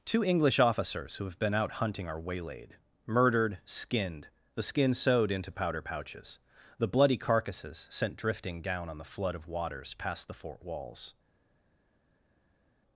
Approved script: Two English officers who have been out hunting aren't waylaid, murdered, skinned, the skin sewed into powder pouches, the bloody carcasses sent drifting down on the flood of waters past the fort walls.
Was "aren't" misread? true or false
true